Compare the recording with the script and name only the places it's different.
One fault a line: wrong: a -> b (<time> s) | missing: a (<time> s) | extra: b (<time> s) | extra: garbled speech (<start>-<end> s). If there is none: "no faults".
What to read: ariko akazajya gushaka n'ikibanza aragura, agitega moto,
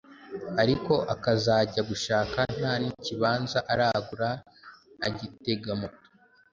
extra: nta (2.6 s)